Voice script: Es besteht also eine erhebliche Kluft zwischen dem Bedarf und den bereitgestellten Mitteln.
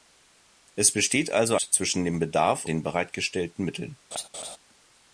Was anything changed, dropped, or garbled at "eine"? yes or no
yes